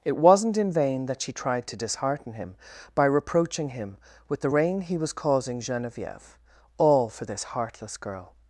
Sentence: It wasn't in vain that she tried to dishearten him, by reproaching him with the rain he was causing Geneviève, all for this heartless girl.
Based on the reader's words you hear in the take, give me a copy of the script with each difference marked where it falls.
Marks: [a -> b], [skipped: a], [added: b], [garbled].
It wasn't in vain that she tried to dishearten him, by reproaching him with the rain he was causing Geneviève, all for this heartless girl.